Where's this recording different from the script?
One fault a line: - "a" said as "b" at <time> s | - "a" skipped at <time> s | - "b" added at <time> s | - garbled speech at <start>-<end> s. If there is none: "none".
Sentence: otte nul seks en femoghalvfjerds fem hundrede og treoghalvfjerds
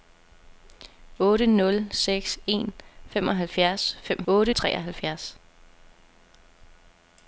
- "hundrede" said as "otte" at 4.3 s